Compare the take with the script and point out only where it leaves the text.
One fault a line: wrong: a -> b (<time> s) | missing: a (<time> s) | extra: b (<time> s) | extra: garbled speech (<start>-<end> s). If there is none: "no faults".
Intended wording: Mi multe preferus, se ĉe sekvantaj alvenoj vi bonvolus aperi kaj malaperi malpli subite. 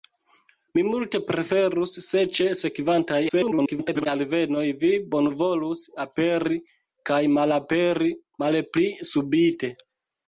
extra: garbled speech (3.3-4.1 s)